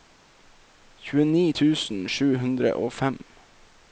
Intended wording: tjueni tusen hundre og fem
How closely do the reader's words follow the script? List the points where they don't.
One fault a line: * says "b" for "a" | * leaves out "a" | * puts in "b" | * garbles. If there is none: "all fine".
* puts in "sju"